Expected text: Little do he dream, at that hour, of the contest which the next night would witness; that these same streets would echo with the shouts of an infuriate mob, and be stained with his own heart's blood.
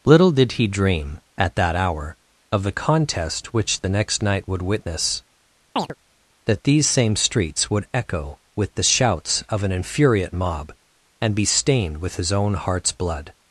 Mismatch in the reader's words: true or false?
true